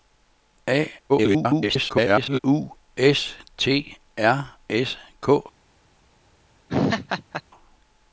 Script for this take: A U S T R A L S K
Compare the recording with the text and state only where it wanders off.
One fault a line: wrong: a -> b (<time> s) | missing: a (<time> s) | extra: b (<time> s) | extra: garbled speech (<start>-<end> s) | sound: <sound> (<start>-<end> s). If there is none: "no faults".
extra: garbled speech (1.1-2.4 s)
missing: A L (4.6 s)
sound: laugh (6.7-7.4 s)